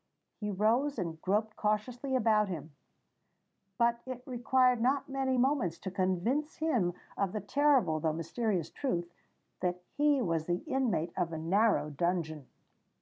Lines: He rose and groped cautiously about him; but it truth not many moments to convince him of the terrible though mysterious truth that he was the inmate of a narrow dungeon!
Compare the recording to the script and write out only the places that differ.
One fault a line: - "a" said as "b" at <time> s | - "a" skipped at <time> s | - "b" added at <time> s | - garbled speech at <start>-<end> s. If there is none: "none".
- "truth" said as "required" at 4.2 s